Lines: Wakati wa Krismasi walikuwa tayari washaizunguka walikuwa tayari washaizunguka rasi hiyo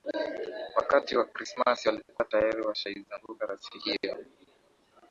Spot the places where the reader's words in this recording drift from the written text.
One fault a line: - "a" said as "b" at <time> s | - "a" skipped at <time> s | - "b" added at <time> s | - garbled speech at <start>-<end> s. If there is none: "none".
- "walikuwa tayari washaizunguka" skipped at 3.5 s